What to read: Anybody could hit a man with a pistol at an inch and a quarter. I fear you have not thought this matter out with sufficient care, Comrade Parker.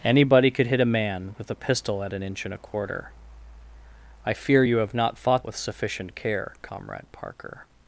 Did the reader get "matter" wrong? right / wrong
wrong